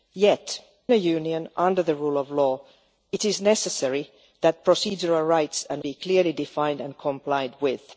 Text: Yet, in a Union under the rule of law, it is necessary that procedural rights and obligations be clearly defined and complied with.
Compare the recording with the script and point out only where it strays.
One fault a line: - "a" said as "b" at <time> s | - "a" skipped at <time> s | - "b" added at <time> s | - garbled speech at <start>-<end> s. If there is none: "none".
- "in" skipped at 0.6 s
- "obligations" skipped at 5.8 s